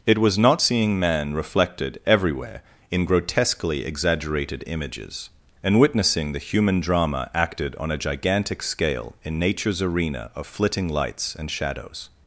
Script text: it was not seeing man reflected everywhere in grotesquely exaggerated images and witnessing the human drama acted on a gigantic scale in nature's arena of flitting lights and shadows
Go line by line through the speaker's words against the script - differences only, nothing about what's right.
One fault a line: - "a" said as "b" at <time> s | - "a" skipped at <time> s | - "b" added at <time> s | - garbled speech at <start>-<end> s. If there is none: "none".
none